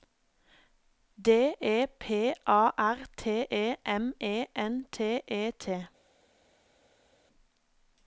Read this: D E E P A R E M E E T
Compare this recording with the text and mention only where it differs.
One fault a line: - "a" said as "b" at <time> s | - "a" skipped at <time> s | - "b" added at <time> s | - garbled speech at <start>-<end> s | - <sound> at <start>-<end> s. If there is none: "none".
- "E" skipped at 1.9 s
- "T" added at 3.1 s
- "N T" added at 4.5 s